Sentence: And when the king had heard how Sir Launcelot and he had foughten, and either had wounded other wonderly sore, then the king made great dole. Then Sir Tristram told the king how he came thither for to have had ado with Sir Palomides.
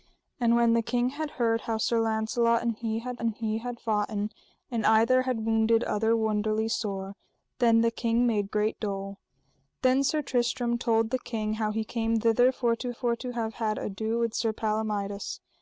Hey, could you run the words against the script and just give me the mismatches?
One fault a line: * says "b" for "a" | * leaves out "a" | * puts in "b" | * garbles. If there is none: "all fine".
* puts in "and he had"
* puts in "for to"